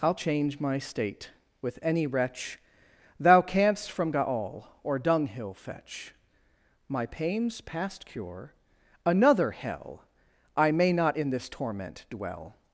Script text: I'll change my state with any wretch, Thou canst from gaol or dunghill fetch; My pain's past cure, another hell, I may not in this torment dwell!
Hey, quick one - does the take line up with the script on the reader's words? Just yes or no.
yes